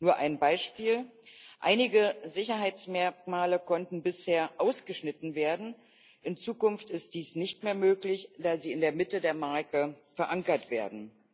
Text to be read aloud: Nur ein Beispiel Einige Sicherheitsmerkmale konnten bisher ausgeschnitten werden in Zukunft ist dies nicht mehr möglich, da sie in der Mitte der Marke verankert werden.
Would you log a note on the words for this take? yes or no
no